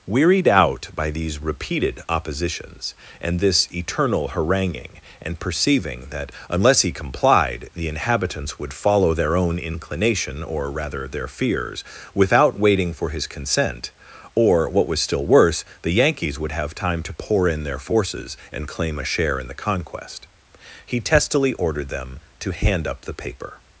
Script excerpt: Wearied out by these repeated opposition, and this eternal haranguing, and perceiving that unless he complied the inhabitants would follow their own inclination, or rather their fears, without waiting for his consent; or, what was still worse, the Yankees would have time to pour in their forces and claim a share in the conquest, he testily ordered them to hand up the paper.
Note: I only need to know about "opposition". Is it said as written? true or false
false